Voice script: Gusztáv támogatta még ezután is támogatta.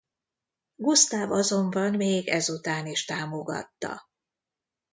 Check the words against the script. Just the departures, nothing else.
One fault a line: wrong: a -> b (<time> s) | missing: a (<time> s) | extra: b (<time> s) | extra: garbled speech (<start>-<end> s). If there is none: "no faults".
wrong: támogatta -> azonban (1.3 s)